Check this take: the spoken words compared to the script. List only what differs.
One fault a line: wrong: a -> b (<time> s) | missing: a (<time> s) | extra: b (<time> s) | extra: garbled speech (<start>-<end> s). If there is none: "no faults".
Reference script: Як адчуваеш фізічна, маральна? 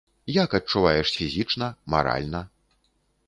no faults